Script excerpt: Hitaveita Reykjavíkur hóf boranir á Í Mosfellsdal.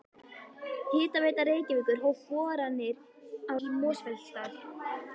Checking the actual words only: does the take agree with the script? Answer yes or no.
yes